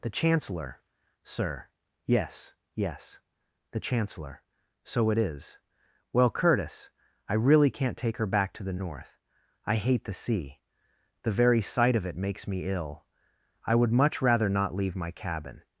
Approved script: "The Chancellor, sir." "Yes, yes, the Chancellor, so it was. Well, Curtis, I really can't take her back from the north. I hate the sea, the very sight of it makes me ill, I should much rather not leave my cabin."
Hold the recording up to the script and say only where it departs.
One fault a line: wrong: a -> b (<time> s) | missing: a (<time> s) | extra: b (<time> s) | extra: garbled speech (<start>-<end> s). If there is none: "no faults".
wrong: was -> is (5.2 s)
wrong: from -> to (8.5 s)
wrong: should -> would (13.8 s)